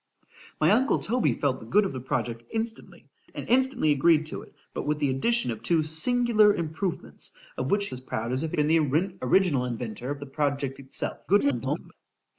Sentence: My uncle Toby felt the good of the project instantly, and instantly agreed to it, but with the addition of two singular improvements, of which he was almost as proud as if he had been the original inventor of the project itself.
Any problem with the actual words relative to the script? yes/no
yes